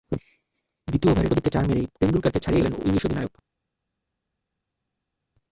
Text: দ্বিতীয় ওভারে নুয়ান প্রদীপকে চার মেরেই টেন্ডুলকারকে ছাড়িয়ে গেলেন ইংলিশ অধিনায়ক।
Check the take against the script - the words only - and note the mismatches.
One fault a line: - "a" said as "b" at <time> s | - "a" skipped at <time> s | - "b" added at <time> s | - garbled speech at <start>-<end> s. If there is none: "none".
- "নুয়ান" skipped at 1.3 s